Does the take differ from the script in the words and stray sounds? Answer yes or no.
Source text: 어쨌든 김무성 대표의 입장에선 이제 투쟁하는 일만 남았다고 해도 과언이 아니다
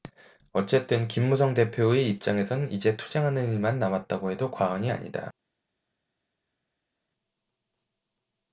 no